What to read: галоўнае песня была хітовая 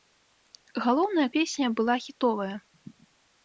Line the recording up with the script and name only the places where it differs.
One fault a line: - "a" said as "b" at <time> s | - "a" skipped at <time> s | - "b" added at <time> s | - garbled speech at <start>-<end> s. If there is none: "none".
none